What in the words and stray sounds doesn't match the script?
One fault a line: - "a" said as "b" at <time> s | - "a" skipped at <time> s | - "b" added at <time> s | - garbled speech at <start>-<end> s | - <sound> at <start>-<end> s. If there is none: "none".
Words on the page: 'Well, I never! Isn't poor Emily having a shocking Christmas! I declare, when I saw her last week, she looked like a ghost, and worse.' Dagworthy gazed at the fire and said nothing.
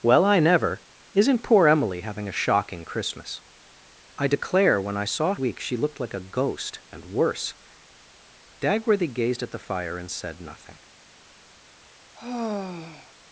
- "her last" skipped at 5.3 s
- sigh at 12.1-13.1 s